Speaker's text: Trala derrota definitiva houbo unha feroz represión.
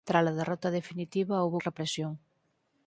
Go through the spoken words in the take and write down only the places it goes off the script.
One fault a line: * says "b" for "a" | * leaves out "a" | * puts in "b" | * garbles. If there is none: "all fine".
* leaves out "unha feroz"